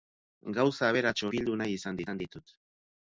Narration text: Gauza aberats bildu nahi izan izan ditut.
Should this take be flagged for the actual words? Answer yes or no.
no